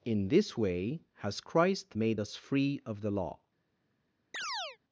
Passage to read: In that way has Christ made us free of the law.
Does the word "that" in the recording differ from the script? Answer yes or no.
yes